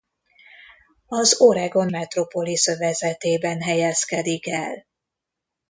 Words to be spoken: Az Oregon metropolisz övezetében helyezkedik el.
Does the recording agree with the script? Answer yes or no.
yes